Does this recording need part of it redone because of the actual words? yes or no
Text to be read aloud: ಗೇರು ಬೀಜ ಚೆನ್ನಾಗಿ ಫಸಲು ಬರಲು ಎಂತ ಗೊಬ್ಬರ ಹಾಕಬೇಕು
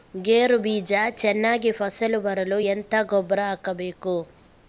no